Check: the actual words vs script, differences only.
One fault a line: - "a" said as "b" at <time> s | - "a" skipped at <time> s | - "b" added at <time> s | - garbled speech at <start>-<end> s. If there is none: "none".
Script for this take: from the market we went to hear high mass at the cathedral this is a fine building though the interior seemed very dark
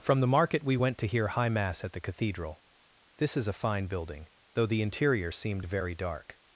none